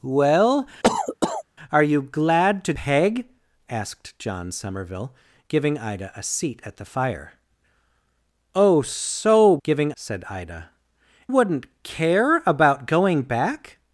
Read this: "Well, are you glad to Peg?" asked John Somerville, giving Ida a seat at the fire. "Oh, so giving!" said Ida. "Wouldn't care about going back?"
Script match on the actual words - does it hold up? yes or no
yes